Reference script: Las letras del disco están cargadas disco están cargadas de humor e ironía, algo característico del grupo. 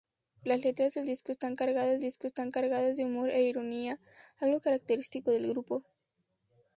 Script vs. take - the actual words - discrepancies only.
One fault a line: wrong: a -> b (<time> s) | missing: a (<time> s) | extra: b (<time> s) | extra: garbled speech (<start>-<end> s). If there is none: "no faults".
no faults